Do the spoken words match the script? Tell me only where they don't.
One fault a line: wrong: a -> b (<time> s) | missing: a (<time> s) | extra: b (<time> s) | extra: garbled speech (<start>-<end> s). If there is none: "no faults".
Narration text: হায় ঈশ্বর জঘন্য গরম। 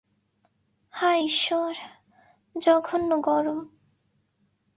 no faults